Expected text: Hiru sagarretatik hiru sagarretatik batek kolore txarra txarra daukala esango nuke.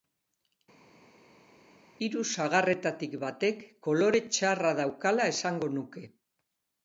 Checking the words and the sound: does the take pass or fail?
fail